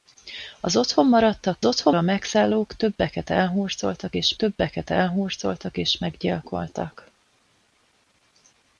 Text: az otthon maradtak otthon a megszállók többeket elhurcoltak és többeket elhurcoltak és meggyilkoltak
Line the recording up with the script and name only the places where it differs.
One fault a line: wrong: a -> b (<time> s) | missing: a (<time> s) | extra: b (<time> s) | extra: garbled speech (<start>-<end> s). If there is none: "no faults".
no faults